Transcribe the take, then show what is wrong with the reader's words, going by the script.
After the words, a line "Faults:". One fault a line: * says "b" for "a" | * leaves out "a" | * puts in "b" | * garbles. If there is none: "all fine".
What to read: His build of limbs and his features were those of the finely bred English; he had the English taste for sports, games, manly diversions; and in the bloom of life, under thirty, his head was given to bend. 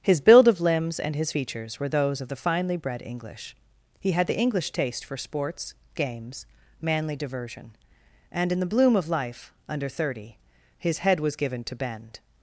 His build of limbs and his features were those of the finely bred English; he had the English taste for sports, games, manly diversion; and in the bloom of life, under thirty, his head was given to bend.
Faults:
* says "diversion" for "diversions"